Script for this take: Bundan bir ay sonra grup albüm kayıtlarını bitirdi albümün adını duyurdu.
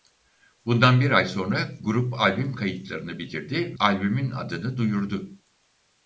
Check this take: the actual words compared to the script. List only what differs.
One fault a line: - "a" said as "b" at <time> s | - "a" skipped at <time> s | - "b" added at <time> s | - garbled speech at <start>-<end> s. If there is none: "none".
none